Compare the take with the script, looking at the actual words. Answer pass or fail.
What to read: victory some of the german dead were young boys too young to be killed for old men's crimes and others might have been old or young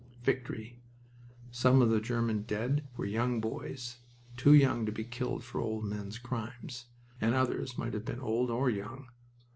pass